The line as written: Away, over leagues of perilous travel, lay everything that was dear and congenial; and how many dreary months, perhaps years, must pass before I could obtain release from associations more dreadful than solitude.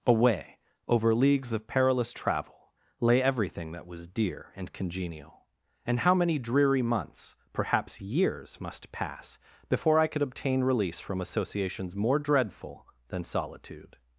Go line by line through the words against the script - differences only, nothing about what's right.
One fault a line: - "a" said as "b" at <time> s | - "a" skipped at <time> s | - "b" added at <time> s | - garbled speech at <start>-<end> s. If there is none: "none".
none